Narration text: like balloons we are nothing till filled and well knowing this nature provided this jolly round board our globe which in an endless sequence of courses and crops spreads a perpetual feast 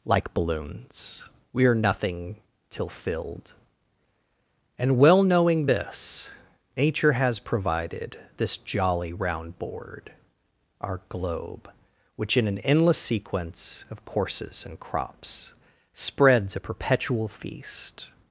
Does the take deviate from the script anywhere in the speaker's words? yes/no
yes